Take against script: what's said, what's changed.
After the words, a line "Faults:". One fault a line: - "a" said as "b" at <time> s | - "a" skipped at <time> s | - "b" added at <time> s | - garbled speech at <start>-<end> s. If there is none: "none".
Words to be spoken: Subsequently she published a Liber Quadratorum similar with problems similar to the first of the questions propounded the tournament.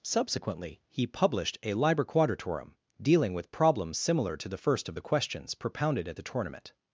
Subsequently he published a Liber Quadratorum dealing with problems similar to the first of the questions propounded at the tournament.
Faults:
- "she" said as "he" at 0.9 s
- "similar" said as "dealing" at 3.0 s
- "at" added at 6.1 s